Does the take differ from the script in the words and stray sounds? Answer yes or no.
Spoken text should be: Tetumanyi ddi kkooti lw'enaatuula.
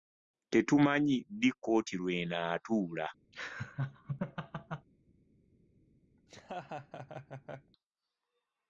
yes